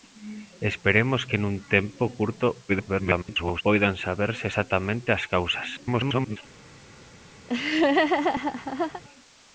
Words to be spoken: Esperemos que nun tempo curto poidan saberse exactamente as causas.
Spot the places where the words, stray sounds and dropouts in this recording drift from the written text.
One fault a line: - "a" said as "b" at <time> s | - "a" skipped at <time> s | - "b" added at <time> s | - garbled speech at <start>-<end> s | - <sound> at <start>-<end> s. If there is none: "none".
- garbled speech at 2.7-3.6 s
- garbled speech at 5.8-6.4 s
- laugh at 7.5-9.0 s